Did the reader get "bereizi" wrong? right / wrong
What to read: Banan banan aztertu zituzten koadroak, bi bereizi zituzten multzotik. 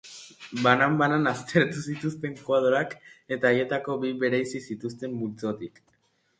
right